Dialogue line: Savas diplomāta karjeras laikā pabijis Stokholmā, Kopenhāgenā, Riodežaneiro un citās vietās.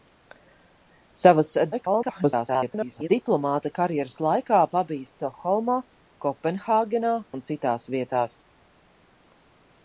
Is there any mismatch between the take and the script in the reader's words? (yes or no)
yes